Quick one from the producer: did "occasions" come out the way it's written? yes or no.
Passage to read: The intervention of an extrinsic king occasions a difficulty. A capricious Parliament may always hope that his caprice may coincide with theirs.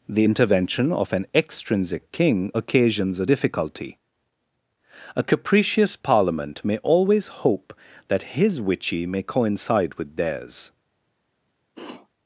yes